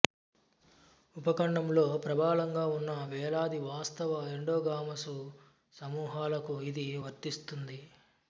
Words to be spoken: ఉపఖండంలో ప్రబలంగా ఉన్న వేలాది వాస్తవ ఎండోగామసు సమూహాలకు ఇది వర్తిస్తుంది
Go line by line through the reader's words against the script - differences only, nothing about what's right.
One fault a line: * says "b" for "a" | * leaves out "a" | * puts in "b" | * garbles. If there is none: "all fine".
all fine